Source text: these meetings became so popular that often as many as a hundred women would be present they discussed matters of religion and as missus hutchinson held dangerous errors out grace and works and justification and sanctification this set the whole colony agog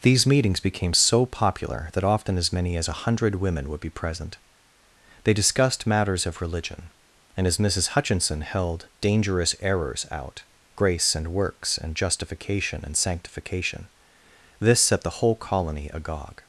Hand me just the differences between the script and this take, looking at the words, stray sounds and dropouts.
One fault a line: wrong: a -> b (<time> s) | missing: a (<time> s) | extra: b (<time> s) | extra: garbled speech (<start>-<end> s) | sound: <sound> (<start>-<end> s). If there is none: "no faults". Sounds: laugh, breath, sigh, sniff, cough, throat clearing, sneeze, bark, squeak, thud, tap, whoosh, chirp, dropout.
no faults